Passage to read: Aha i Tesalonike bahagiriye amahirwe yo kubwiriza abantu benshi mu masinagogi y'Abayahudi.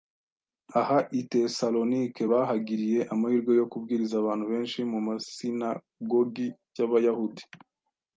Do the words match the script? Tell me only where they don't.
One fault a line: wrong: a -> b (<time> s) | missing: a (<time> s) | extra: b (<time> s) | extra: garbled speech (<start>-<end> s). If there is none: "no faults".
no faults